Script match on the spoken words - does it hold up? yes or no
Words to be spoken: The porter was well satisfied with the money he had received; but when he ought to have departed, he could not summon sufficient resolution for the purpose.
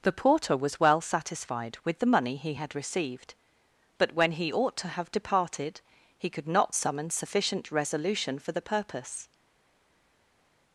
yes